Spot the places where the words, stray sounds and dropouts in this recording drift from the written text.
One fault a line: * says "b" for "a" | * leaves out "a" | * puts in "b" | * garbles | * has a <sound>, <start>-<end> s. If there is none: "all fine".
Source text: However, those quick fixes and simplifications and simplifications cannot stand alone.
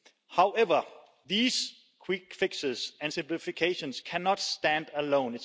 * says "these" for "those"
* leaves out "and simplifications"